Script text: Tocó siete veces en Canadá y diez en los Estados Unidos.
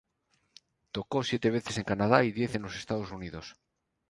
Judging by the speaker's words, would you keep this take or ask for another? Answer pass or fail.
pass